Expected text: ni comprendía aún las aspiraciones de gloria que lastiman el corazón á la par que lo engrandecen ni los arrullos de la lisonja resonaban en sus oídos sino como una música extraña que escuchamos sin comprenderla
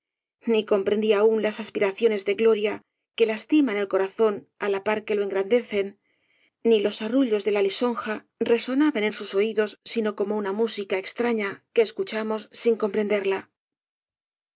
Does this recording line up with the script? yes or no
yes